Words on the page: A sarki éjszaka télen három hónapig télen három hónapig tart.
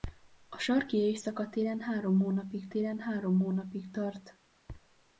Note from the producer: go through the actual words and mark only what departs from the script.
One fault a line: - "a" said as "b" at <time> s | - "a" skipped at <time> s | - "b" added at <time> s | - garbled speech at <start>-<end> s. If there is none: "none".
none